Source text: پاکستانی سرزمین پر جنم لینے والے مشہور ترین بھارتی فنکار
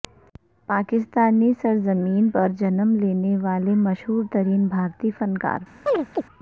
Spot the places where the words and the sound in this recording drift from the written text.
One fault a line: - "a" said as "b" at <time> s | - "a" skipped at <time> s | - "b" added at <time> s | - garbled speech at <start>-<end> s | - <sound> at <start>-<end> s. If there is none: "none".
- chirp at 5.9-6.2 s